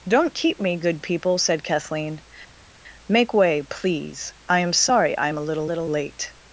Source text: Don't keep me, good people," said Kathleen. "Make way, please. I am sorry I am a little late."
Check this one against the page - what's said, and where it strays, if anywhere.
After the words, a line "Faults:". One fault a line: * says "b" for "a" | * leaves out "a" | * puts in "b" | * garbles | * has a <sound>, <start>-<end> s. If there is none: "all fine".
Don't keep me, good people," said Kathleen. "Make way, please. I am sorry I am a little little late."
Faults:
* puts in "little"